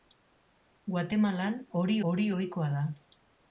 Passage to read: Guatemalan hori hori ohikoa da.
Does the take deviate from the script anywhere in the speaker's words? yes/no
no